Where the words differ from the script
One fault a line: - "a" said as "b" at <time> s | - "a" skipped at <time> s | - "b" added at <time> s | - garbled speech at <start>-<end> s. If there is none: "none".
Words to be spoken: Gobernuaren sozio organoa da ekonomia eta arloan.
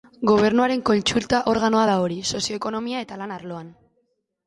- "sozio" said as "kontsulta" at 0.9 s
- "hori sozio" added at 2.0 s
- "lan" added at 3.2 s